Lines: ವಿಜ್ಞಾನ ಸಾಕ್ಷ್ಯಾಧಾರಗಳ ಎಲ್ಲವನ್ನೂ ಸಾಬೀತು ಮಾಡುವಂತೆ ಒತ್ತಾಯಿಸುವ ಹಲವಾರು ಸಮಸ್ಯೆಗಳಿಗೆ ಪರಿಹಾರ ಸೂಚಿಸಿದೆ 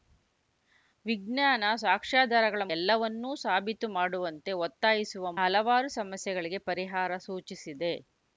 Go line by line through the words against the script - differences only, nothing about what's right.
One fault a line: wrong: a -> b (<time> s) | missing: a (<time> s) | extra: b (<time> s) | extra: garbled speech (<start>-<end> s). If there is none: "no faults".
no faults